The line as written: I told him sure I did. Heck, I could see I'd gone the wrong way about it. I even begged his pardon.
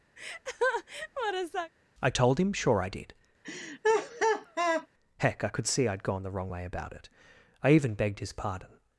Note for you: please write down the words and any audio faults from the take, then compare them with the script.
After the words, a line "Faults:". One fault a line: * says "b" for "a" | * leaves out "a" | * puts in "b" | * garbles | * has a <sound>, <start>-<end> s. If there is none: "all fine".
I told him sure I did. Heck, I could see I'd gone the wrong way about it. I even begged his pardon.
Faults:
* has a laugh, 0.2-1.7 s
* has a laugh, 3.4-4.9 s